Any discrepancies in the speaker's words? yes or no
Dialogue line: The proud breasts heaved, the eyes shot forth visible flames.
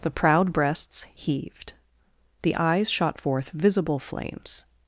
no